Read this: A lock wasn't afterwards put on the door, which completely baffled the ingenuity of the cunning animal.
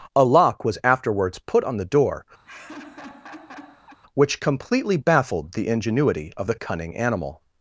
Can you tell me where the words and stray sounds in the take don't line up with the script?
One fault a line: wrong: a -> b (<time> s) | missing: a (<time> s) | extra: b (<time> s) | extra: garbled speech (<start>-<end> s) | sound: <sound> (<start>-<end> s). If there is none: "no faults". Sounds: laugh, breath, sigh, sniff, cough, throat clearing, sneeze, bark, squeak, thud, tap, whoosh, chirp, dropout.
wrong: wasn't -> was (0.7 s)
sound: laugh (2.4-4.0 s)